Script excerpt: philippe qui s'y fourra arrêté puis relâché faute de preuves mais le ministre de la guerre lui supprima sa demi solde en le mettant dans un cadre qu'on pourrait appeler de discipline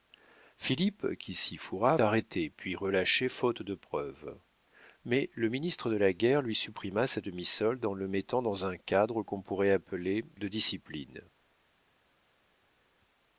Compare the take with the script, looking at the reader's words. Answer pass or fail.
pass